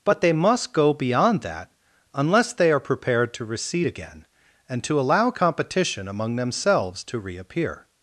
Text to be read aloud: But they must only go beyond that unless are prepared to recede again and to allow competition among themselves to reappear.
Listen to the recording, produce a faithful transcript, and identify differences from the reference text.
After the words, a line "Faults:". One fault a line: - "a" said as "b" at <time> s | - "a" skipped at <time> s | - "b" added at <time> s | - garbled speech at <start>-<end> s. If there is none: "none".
But they must go beyond that unless they are prepared to recede again and to allow competition among themselves to reappear.
Faults:
- "only" skipped at 0.7 s
- "they" added at 2.5 s